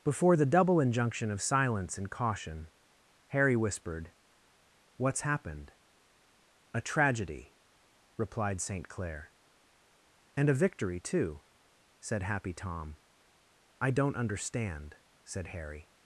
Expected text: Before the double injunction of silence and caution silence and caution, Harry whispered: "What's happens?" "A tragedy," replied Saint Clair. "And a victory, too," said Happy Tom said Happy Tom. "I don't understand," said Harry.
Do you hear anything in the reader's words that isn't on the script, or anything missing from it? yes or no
yes